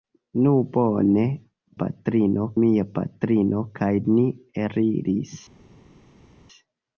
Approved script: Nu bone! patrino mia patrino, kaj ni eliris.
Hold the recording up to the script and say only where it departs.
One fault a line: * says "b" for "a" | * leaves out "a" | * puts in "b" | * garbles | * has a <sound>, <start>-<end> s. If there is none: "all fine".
all fine